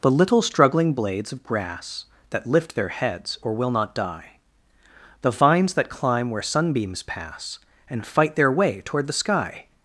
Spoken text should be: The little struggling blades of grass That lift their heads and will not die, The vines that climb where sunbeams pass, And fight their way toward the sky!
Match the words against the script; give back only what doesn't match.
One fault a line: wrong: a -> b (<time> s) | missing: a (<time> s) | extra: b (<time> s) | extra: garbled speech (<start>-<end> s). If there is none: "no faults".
wrong: and -> or (3.4 s)